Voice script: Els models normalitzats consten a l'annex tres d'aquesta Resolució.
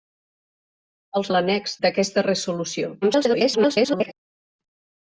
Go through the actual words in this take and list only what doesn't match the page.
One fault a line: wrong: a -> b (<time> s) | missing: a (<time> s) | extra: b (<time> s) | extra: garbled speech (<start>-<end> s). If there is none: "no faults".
missing: models normalitzats consten (1.3 s)
missing: tres (1.8 s)
extra: garbled speech (3.0-4.1 s)